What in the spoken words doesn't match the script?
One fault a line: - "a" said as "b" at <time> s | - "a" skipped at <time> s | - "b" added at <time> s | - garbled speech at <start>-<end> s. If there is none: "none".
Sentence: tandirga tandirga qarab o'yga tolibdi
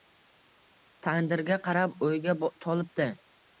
- "tandirga" skipped at 1.6 s